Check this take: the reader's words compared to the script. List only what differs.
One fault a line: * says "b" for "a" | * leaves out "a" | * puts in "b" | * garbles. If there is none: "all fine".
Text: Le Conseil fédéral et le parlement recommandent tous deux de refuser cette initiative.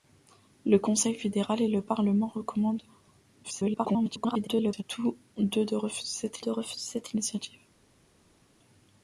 * garbles
* puts in "de refuser cette"